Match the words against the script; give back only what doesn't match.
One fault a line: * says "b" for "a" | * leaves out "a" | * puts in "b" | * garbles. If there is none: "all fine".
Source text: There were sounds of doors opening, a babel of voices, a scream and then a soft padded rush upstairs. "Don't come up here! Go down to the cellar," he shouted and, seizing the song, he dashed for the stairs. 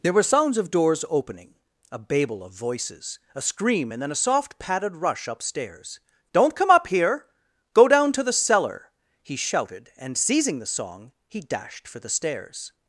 all fine